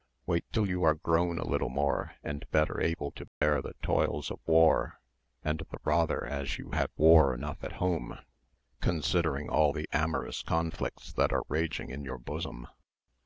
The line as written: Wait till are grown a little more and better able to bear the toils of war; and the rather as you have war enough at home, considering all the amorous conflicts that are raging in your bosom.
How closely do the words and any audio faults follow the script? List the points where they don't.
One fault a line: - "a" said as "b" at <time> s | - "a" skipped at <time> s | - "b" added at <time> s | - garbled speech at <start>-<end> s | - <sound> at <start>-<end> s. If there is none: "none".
- "you" added at 0.7 s
- dropout at 3.3-3.4 s